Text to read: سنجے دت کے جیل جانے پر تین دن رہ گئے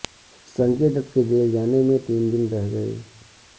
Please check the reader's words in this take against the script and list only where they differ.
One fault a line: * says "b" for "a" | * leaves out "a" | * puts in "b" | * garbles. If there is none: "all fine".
* says "میں" for "پر"